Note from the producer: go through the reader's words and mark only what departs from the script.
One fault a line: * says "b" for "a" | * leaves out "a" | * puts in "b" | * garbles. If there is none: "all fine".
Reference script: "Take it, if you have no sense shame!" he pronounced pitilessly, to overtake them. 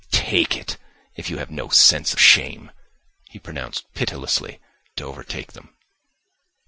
all fine